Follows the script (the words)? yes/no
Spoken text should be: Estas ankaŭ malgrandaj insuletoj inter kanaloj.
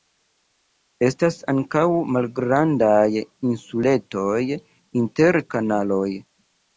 yes